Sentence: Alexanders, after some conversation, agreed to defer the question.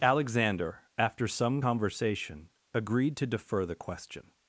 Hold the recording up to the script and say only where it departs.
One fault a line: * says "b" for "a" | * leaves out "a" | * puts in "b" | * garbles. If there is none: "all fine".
* says "Alexander" for "Alexanders"